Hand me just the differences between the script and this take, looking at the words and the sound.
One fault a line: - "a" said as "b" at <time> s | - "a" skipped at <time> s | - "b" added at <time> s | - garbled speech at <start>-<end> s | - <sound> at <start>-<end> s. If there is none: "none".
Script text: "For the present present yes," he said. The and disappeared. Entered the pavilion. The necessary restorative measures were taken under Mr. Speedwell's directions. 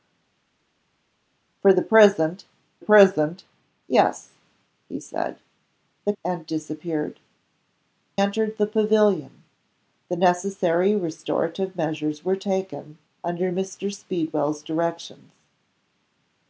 none